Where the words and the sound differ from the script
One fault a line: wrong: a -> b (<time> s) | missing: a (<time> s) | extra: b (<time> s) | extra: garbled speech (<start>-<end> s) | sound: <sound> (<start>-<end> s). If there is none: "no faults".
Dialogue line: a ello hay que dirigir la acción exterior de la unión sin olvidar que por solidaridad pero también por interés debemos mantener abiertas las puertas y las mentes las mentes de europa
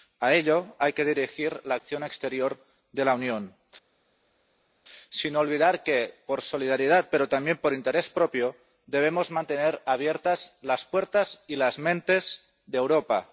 extra: propio (8.1 s)
missing: las mentes (12.4 s)